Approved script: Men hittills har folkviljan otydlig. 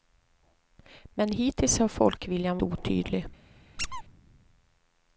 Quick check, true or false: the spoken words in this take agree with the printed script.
true